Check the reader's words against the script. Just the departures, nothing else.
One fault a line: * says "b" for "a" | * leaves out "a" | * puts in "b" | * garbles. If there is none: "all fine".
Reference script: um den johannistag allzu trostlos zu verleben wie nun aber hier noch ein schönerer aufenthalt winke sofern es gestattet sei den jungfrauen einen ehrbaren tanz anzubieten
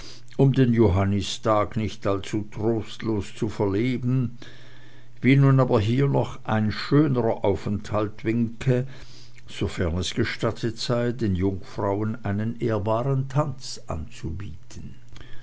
* puts in "nicht"